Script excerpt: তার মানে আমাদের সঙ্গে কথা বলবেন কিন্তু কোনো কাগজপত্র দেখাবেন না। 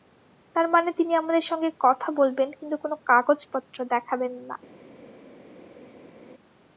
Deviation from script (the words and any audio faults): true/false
true